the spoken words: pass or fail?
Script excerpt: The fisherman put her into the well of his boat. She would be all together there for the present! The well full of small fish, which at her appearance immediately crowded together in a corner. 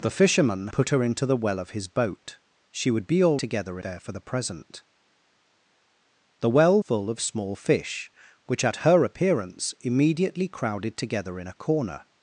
pass